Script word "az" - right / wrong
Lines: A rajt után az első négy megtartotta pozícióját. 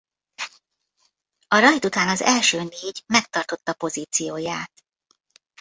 right